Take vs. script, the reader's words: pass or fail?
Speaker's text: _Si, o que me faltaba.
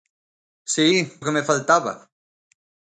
pass